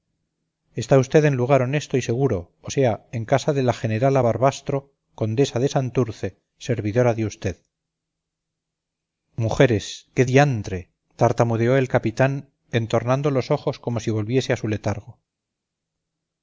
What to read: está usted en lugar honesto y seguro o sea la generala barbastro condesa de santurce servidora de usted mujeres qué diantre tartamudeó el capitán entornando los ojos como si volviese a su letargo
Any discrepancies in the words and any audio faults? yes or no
yes